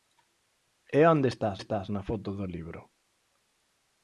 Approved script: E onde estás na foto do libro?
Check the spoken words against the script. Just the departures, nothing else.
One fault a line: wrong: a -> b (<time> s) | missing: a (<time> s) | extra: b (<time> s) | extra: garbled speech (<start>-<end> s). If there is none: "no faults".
extra: estás (1.6 s)